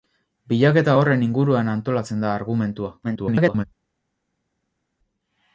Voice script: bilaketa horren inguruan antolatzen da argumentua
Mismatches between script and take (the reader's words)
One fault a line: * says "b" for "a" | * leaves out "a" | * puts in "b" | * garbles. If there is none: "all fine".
* garbles